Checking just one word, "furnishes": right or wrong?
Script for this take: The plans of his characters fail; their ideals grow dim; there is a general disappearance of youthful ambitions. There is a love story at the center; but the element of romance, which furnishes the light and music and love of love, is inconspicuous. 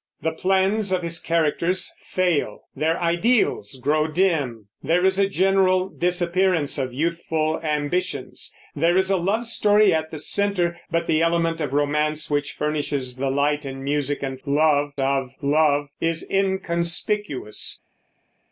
right